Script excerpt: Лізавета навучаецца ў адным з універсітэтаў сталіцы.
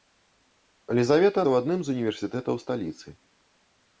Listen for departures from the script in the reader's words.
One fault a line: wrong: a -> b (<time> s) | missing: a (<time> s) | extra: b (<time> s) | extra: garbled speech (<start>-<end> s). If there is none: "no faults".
missing: навучаецца (1.4 s)